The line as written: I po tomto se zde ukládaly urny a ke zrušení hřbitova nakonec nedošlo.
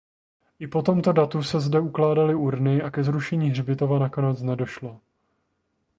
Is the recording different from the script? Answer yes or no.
yes